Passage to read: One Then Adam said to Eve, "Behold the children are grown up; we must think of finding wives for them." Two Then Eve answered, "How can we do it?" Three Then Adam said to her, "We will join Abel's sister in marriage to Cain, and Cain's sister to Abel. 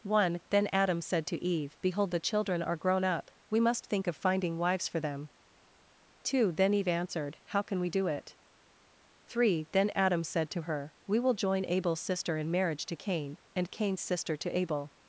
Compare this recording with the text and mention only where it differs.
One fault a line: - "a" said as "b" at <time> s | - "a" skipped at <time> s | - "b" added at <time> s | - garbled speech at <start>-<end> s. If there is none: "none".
none